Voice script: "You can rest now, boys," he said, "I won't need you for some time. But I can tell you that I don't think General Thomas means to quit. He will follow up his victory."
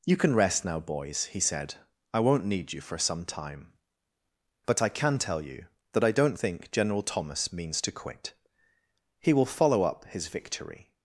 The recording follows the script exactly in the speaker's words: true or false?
true